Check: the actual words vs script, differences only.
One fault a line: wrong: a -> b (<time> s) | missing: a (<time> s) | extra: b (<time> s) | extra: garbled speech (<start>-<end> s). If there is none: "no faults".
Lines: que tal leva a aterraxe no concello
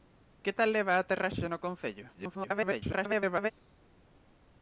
extra: garbled speech (2.1-3.5 s)